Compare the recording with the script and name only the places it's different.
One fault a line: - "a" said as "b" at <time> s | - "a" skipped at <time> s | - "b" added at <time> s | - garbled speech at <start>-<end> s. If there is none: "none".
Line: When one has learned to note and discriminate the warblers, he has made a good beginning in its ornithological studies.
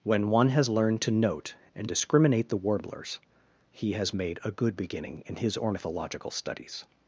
- "its" said as "his" at 5.4 s